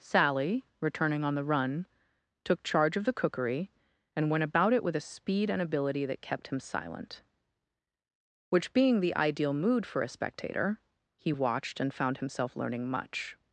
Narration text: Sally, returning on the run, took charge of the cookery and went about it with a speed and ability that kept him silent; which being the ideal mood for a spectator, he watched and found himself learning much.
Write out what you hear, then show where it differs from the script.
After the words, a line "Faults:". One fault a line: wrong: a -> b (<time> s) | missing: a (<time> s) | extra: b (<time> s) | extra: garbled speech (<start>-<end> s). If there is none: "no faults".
Sally, returning on the run, took charge of the cookery and went about it with a speed and ability that kept him silent; which being the ideal mood for a spectator, he watched and found himself learning much.
Faults:
no faults